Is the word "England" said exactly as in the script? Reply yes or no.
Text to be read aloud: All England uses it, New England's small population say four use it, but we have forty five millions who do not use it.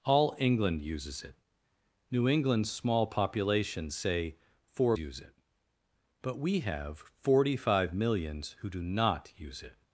yes